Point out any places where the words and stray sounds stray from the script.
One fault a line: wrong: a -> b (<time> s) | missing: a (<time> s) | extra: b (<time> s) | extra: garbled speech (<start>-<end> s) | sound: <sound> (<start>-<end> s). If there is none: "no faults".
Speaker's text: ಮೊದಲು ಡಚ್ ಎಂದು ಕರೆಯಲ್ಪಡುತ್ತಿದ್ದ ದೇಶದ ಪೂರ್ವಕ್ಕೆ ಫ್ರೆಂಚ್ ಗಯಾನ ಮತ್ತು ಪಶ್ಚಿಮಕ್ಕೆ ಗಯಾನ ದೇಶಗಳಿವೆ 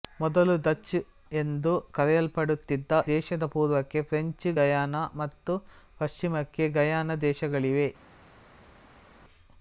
no faults